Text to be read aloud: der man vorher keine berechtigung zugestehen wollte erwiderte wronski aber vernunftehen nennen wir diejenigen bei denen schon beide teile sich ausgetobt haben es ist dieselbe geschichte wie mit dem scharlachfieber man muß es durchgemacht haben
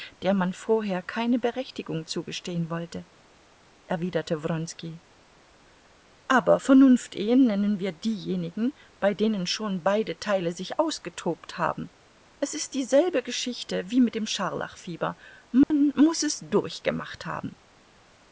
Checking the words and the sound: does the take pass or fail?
fail